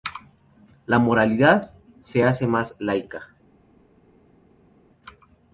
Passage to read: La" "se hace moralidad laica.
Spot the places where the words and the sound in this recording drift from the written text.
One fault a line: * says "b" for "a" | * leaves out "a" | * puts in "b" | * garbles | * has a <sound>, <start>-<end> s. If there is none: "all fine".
* puts in "moralidad"
* says "más" for "moralidad"